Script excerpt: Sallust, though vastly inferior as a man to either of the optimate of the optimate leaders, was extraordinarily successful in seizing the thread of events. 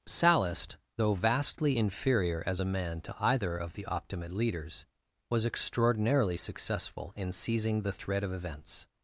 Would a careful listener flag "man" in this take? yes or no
no